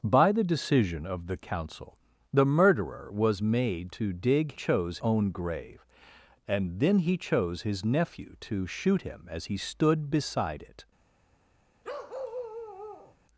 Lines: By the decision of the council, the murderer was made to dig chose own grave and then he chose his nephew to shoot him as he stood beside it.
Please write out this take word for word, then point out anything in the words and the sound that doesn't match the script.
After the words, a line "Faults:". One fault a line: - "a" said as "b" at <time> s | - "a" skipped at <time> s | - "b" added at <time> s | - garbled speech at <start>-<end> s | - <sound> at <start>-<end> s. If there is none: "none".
By the decision of the council, the murderer was made to dig chose own grave and then he chose his nephew to shoot him as he stood beside it.
Faults:
- bark at 11.8-13.2 s